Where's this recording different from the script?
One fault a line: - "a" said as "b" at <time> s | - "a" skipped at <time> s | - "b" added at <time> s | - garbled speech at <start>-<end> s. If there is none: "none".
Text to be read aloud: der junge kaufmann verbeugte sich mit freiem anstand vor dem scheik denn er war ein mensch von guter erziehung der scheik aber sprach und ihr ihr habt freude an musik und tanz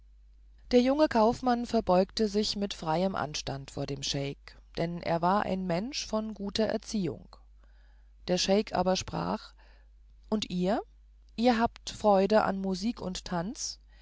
none